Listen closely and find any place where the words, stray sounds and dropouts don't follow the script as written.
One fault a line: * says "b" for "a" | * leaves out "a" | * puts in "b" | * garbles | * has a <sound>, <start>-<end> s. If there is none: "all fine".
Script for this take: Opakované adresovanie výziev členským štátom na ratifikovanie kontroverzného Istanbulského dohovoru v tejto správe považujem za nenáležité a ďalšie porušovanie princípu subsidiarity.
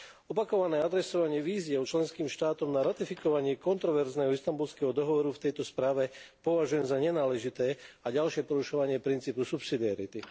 all fine